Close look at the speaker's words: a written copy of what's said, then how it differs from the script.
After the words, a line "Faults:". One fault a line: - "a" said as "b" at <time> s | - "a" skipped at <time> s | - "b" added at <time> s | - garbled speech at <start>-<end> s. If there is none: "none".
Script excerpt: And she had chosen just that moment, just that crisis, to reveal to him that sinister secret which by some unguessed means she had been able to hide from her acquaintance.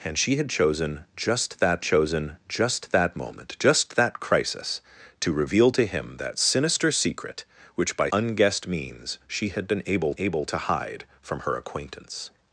And she had chosen just that chosen just that moment, just that crisis, to reveal to him that sinister secret which by unguessed means she had been able able to hide from her acquaintance.
Faults:
- "chosen just that" added at 1.8 s
- "some" skipped at 8.1 s
- "able" added at 10.2 s